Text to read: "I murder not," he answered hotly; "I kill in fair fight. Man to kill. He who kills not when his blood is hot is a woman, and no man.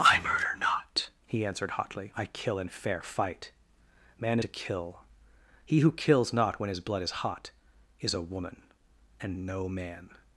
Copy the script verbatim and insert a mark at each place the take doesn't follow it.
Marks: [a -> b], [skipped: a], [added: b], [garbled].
"I murder not," he answered hotly; "I kill in fair fight. Man to kill. He who kills not when his blood is hot is a woman, and no man.